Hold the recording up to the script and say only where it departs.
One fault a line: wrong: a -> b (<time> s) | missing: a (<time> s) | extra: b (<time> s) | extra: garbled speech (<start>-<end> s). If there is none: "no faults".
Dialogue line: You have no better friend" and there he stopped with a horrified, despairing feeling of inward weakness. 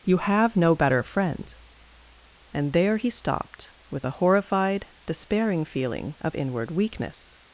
no faults